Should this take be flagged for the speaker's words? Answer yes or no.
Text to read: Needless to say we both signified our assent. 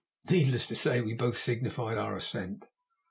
no